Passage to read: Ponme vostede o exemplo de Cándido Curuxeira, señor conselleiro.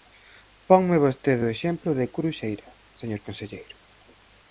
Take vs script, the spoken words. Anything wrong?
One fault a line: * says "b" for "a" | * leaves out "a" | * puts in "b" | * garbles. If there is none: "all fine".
* leaves out "Cándido"